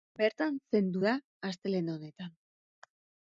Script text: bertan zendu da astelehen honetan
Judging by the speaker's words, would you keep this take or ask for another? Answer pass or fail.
pass